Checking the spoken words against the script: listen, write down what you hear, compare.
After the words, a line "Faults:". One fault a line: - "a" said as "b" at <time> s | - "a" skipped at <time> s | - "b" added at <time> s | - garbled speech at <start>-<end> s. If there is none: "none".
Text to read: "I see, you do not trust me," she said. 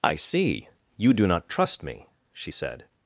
"I see, you do not trust me," she said.
Faults:
none